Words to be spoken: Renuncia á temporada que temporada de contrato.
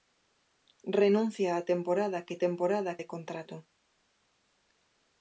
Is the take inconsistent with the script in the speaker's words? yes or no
no